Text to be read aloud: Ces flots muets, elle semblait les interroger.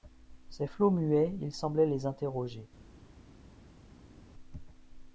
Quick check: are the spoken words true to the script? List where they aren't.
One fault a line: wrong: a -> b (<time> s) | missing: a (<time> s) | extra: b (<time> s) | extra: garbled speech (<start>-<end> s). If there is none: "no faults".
wrong: elle -> il (1.4 s)